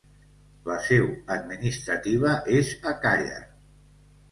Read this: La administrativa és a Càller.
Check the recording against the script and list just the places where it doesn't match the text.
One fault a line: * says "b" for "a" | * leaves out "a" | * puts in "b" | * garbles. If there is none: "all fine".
* puts in "seu"